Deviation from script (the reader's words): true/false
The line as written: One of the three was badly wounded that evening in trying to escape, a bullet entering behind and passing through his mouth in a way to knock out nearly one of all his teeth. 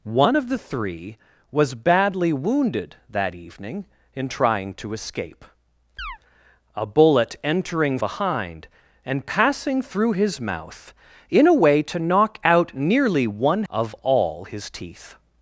false